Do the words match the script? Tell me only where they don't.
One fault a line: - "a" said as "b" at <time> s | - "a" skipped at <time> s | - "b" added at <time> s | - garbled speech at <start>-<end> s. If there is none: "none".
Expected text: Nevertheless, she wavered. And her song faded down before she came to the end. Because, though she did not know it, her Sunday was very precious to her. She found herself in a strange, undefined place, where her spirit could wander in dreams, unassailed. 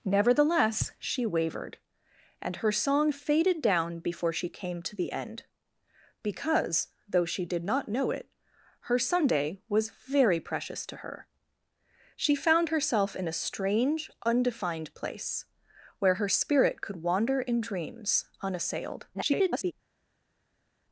- garbled speech at 19.1-19.7 s